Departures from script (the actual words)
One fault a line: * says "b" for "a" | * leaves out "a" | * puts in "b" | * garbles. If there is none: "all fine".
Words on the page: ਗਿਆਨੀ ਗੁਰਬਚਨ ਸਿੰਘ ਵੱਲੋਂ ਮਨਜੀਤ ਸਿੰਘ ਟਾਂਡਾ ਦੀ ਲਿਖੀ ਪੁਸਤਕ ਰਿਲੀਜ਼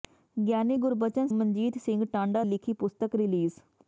* leaves out "ਸਿੰਘ ਵੱਲੋਂ"
* leaves out "ਦੀ"